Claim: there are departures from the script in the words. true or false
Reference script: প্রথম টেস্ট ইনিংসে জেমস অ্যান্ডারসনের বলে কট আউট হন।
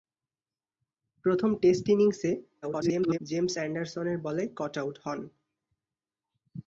true